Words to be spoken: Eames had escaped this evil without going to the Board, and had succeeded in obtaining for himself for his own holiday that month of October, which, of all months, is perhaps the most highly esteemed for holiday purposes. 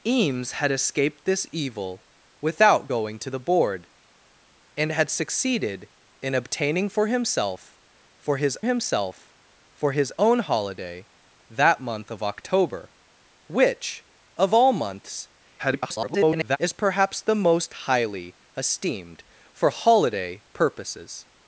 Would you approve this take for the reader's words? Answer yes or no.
no